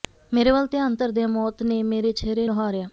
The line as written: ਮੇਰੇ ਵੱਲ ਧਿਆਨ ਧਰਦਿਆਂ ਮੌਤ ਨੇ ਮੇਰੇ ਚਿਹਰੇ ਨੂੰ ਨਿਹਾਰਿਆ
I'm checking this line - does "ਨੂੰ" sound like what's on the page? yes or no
no